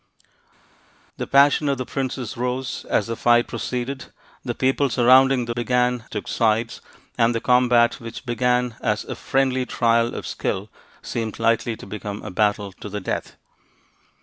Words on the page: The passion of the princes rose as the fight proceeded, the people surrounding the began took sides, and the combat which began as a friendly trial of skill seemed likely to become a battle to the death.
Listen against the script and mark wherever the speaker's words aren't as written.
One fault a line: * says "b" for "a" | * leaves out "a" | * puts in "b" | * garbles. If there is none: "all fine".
all fine